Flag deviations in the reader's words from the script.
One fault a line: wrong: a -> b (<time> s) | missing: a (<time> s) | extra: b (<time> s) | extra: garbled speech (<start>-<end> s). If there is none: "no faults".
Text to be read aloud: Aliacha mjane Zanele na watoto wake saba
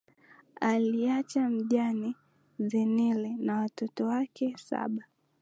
no faults